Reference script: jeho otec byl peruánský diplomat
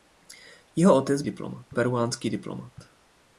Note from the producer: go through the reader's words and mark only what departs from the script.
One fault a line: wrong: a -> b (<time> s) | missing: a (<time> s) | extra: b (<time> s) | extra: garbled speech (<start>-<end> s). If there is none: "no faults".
wrong: byl -> diplomat (1.2 s)